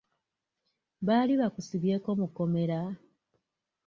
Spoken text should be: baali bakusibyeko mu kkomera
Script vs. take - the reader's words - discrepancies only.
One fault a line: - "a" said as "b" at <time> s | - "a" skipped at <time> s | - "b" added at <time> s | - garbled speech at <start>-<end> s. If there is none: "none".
none